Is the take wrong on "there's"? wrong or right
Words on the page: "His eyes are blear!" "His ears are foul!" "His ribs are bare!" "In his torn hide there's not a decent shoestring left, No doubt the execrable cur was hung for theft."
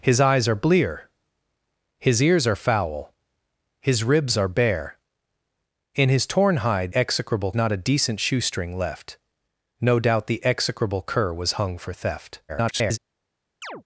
wrong